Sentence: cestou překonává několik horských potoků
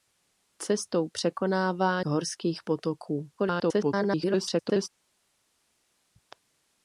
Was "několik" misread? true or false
true